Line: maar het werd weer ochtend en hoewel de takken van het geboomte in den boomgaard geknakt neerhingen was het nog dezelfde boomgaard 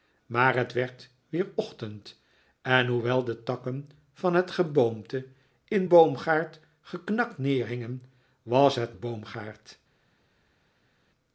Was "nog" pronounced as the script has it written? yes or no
no